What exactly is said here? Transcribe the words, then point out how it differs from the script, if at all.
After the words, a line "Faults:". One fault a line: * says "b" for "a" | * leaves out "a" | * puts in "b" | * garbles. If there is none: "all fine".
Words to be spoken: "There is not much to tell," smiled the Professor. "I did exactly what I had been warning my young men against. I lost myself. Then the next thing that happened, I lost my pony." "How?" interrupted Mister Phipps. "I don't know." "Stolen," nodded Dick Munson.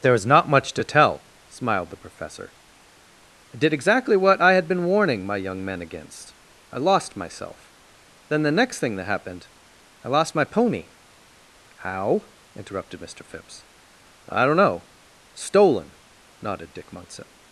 "There is not much to tell," smiled the Professor. "I did exactly what I had been warning my young men against. I lost myself. Then the next thing that happened, I lost my pony." "How?" interrupted Mister Phipps. "I don't know." "Stolen," nodded Dick Munson.
Faults:
all fine